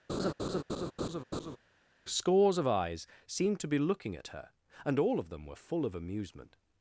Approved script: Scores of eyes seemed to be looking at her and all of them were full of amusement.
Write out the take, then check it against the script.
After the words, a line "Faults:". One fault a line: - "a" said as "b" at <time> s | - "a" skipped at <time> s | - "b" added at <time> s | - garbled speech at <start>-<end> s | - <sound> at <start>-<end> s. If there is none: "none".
Scores of eyes seemed to be looking at her and all of them were full of amusement.
Faults:
- laugh at 0.1-1.6 s